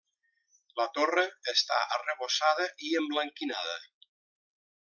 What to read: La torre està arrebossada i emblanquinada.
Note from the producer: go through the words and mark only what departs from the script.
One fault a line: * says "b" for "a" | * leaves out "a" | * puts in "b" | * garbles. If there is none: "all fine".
all fine